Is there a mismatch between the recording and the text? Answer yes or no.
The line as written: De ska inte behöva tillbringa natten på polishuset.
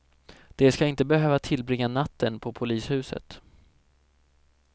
no